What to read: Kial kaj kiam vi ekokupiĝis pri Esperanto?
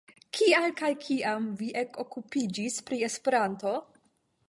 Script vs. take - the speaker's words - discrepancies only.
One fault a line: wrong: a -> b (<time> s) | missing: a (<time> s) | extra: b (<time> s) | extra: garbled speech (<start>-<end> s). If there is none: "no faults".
no faults